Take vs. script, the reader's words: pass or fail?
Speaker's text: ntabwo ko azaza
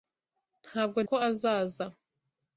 pass